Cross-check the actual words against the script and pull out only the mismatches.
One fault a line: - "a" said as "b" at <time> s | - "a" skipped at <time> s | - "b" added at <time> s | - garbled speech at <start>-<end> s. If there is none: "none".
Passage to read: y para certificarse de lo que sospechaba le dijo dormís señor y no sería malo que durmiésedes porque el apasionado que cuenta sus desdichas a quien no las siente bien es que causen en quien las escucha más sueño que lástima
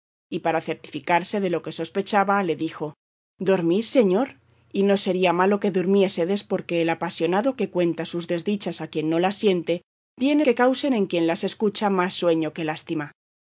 - "es" skipped at 10.4 s